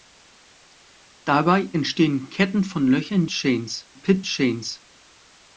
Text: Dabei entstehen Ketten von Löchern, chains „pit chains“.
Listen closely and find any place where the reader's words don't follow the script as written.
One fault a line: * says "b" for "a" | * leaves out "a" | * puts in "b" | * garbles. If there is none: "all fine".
all fine